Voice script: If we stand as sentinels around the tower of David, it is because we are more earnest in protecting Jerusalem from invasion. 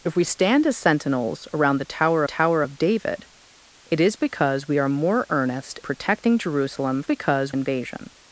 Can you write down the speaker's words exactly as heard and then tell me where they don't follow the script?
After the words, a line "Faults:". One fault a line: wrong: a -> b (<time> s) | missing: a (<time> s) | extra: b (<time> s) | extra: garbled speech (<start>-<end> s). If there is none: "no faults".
If we stand as sentinels around the tower tower of David, it is because we are more earnest protecting Jerusalem because invasion.
Faults:
extra: tower (2.2 s)
missing: in (5.8 s)
wrong: from -> because (7.0 s)